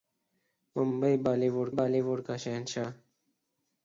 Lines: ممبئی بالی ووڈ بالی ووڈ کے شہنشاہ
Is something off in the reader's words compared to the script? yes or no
no